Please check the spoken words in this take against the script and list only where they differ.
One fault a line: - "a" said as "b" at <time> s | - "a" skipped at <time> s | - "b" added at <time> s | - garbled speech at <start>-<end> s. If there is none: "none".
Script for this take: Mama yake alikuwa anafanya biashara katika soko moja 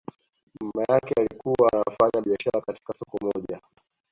none